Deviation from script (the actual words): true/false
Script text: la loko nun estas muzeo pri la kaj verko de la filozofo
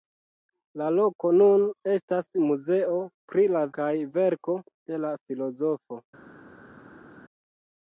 false